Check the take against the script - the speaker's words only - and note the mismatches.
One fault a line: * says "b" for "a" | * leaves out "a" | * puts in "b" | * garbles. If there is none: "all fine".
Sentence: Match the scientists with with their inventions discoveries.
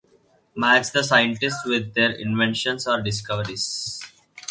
* leaves out "with"
* puts in "or"